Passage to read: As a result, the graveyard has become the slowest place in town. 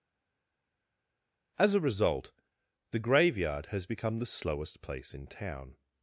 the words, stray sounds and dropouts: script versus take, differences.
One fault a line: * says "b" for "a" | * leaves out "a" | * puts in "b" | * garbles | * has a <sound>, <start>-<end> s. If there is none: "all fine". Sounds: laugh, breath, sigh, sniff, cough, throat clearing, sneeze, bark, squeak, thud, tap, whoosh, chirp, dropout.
all fine